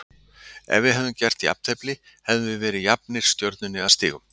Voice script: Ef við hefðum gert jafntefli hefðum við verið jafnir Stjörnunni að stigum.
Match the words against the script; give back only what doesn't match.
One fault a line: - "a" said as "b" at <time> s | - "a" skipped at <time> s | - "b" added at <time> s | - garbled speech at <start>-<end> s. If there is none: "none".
none